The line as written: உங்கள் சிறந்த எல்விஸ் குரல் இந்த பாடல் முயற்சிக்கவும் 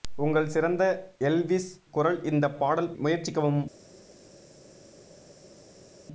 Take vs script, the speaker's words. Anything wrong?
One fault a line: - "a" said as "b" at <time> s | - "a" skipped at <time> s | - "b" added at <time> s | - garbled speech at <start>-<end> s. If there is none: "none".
none